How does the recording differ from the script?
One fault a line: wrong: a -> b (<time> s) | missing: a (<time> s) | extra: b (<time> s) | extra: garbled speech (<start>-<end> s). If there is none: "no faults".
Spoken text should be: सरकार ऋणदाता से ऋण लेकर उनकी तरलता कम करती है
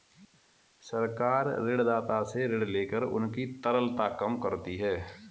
no faults